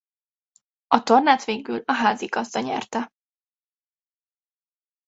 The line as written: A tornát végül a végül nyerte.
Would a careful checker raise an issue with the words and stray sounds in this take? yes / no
yes